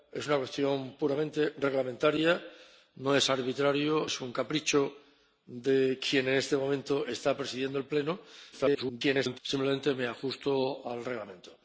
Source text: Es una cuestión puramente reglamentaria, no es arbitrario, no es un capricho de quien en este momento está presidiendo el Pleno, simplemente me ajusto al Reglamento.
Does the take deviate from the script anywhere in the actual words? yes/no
yes